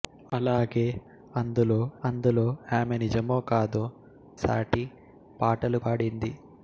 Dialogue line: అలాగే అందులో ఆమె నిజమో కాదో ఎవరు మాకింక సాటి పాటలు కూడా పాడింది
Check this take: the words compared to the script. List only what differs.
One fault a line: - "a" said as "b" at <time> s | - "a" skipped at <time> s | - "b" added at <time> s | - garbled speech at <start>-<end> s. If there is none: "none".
- "అందులో" added at 2.0 s
- "ఎవరు మాకింక" skipped at 3.8 s
- "కూడా" skipped at 5.8 s